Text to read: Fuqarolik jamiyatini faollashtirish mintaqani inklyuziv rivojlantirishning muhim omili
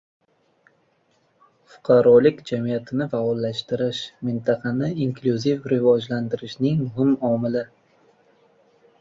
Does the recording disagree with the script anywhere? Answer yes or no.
no